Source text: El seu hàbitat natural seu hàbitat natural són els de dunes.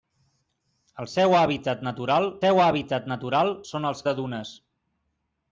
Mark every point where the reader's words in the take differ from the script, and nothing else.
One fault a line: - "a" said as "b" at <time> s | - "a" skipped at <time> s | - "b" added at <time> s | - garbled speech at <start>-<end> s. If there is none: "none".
none